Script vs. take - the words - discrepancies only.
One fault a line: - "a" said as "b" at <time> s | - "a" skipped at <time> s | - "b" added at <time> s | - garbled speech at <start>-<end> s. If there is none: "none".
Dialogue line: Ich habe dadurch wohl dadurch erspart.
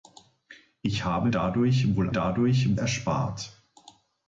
none